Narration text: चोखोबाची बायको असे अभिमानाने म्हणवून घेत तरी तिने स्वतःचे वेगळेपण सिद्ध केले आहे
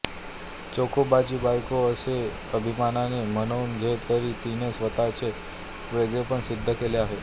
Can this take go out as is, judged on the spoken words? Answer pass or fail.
pass